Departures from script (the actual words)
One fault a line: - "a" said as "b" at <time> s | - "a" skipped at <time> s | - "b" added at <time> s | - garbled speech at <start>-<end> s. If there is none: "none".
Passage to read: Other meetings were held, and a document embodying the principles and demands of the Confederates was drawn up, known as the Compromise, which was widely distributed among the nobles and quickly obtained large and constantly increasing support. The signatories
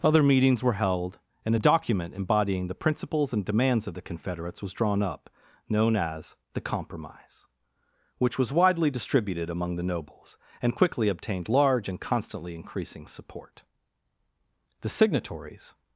none